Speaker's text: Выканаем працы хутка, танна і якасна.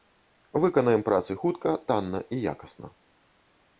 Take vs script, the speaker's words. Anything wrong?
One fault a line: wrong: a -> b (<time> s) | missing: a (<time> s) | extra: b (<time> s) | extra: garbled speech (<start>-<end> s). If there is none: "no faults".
no faults